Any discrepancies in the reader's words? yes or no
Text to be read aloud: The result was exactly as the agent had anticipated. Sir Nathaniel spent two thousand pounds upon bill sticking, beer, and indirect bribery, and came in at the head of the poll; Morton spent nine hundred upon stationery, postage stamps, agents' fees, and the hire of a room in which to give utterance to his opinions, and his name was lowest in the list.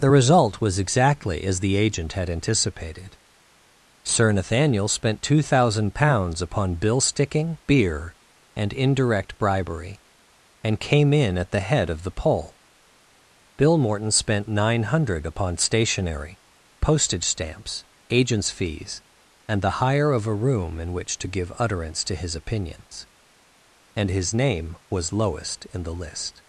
yes